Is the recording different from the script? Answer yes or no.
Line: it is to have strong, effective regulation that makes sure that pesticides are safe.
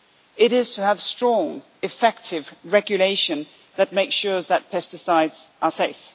no